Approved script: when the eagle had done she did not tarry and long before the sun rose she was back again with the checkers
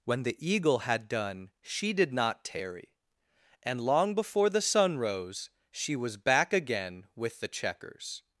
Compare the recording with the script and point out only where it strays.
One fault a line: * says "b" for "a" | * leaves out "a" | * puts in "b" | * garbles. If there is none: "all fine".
all fine